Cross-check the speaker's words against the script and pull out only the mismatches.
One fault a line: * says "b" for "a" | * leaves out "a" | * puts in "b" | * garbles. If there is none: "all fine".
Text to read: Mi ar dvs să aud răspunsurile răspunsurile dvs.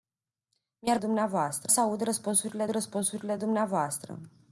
all fine